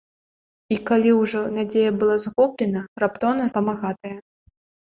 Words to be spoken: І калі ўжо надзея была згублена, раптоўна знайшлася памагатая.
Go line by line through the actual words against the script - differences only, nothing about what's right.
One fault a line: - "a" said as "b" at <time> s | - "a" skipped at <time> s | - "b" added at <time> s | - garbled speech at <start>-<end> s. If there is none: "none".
- "знайшлася" skipped at 3.4 s